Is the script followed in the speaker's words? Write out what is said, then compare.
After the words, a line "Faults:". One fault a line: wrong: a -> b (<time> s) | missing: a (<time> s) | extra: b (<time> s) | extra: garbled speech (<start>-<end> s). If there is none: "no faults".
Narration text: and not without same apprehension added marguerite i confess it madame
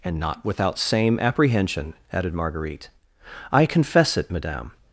and not without same apprehension added marguerite i confess it madame
Faults:
no faults